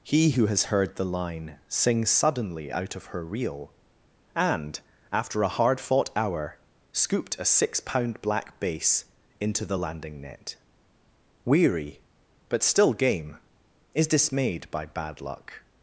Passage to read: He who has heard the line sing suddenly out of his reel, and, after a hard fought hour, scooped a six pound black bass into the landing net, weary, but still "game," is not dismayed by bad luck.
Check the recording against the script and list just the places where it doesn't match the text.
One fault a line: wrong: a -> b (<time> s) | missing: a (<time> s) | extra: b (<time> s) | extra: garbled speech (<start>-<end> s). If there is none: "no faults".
wrong: his -> her (3.0 s)
missing: not (14.1 s)